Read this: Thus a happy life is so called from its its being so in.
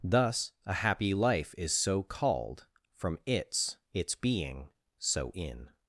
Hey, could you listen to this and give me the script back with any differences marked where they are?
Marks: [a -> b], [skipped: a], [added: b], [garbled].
Thus a happy life is so called from its its being so in.